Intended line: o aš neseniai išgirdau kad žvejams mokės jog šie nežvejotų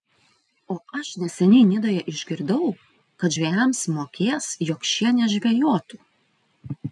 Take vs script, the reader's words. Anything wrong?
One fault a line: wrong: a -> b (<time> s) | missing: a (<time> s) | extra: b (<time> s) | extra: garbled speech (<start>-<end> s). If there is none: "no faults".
extra: nidoje (1.7 s)